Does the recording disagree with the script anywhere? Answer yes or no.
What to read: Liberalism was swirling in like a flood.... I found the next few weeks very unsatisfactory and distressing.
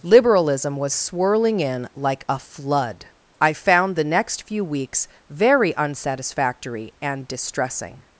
no